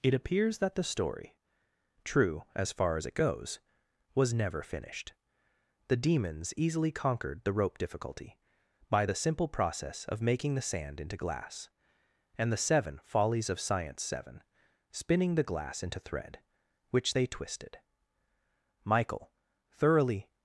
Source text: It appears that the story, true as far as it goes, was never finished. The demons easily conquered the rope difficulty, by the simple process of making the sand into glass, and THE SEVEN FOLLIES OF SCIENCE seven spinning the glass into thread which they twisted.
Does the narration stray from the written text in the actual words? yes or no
yes